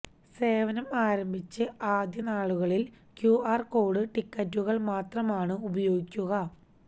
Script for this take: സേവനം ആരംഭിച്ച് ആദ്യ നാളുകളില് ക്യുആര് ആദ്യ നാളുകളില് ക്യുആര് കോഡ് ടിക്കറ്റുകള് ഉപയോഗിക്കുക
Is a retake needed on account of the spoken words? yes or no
yes